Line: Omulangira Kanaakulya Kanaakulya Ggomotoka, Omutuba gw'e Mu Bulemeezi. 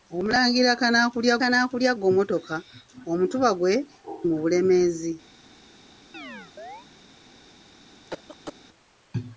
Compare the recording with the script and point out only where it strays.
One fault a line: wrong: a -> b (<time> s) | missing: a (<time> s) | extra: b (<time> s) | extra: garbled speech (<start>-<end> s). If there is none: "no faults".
no faults